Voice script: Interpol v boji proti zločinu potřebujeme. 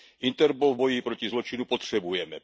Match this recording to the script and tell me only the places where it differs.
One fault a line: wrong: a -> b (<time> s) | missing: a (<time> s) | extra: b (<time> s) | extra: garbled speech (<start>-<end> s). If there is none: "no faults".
no faults